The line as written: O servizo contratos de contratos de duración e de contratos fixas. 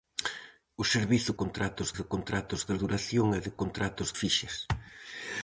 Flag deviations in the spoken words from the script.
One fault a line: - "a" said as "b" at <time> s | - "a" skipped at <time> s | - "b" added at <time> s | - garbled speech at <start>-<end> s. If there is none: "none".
none